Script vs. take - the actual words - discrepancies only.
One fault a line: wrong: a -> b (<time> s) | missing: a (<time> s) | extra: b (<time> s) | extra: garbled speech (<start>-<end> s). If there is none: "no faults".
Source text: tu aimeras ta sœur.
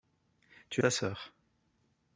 missing: aimeras (0.8 s)